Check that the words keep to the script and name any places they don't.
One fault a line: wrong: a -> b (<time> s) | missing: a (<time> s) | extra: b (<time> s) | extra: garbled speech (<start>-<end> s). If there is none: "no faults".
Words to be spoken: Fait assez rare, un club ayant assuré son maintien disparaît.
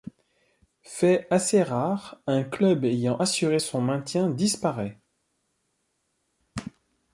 no faults